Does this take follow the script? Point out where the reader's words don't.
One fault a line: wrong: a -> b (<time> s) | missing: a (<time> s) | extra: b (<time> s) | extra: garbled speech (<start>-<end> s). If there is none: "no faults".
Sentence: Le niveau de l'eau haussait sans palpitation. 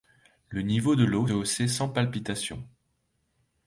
no faults